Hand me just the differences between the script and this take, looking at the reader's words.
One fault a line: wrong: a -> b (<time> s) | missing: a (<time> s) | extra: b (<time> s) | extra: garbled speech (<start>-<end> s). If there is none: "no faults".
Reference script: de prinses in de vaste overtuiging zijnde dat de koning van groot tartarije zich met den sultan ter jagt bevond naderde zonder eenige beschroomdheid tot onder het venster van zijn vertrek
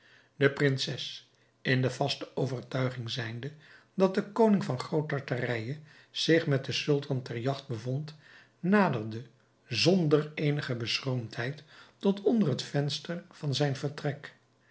no faults